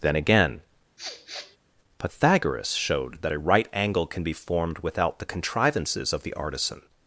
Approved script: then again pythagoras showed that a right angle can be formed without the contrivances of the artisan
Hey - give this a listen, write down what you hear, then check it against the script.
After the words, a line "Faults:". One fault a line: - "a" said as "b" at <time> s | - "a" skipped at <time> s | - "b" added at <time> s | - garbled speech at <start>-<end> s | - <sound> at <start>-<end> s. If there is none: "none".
then again pythagoras showed that a right angle can be formed without the contrivances of the artisan
Faults:
- sniff at 1.0-1.6 s